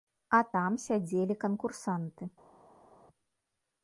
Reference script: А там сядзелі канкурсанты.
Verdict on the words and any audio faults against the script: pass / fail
pass